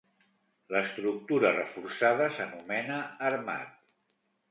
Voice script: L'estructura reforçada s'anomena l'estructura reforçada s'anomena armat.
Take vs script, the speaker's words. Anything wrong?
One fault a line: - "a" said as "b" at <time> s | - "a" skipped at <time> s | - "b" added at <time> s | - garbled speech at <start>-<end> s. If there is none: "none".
- "l'estructura reforçada s'anomena" skipped at 3.0 s